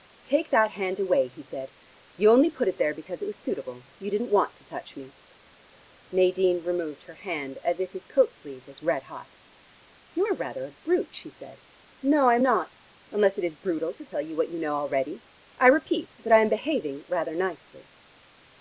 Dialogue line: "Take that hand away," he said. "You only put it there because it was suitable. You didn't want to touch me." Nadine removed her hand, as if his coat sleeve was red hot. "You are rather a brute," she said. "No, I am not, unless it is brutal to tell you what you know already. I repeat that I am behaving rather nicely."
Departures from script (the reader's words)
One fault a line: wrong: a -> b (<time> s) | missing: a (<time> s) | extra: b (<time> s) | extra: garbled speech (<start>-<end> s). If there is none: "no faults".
no faults